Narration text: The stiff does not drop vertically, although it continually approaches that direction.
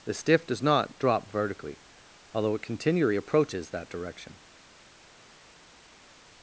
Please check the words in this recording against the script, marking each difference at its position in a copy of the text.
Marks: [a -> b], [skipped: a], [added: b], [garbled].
The stiff does not drop vertically, although it continually approaches that direction.